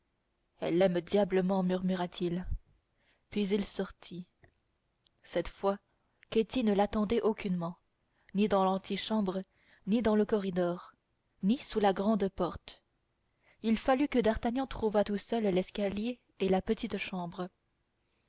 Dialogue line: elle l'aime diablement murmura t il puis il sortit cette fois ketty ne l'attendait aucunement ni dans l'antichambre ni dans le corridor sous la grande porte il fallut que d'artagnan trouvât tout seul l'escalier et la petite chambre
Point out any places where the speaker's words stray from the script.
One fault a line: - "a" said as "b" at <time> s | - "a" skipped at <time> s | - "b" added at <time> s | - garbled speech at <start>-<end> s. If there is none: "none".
- "ni" added at 11.4 s